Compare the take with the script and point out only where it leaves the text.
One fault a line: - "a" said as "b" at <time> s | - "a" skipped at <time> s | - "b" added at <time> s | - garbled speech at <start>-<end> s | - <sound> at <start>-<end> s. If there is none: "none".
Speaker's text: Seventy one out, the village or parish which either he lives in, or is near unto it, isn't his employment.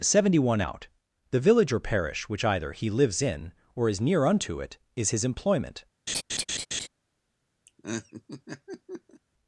- "isn't" said as "is" at 4.9 s
- laugh at 6.1-6.9 s
- laugh at 7.7-9.2 s